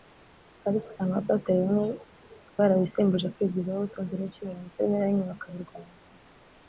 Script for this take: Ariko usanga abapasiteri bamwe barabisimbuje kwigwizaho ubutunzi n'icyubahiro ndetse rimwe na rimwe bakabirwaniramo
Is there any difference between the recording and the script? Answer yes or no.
no